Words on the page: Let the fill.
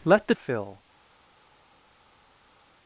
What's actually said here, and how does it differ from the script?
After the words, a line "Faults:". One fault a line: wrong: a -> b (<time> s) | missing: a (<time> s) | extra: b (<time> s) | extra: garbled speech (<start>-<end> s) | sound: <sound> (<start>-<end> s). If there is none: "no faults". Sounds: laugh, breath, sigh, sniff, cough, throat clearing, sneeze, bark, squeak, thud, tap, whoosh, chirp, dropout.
Let the fill.
Faults:
no faults